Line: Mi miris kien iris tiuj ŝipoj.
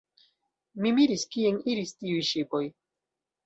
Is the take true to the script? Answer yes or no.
yes